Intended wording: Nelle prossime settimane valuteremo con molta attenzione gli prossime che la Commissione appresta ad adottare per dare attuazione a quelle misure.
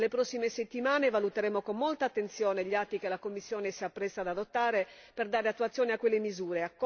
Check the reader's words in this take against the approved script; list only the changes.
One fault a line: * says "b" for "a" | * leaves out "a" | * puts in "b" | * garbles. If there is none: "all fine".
* says "atti" for "prossime"
* puts in "si"